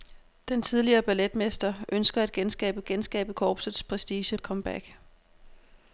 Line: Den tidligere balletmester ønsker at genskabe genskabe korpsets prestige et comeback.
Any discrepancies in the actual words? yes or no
no